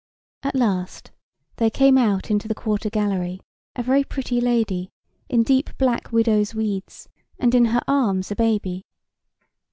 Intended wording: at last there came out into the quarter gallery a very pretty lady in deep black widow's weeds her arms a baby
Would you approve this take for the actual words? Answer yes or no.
no